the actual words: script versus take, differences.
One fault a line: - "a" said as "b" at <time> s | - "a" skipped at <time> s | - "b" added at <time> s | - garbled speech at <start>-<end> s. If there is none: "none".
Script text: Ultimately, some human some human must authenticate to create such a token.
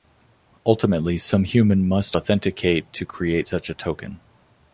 - "some human" skipped at 1.9 s